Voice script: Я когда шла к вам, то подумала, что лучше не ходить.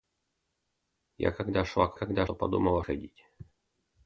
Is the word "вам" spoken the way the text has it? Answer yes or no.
no